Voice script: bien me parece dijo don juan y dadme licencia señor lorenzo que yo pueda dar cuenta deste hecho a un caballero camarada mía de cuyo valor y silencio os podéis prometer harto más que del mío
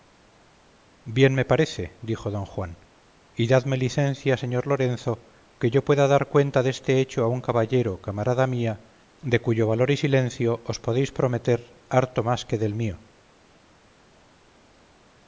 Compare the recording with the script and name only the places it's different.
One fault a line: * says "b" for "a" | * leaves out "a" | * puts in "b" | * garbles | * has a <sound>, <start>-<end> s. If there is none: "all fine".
all fine